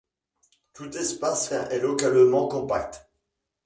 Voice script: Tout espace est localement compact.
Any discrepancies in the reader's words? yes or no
no